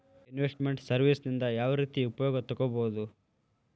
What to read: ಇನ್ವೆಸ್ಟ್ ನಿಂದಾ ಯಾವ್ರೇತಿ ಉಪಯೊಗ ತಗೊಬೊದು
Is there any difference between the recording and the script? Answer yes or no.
yes